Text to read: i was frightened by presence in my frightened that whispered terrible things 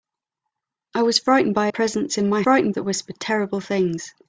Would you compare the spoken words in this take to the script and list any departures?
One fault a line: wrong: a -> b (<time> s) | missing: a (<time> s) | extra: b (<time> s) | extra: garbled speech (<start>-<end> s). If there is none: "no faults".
no faults